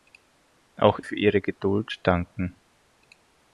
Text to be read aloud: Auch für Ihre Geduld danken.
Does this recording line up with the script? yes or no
yes